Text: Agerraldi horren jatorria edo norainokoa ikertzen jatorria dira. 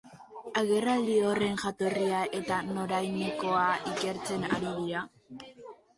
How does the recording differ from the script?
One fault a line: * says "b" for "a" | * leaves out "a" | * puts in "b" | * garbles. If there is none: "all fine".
* says "eta" for "edo"
* says "ari" for "jatorria"